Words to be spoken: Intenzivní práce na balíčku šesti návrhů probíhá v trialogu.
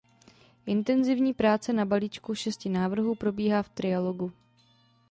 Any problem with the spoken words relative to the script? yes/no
no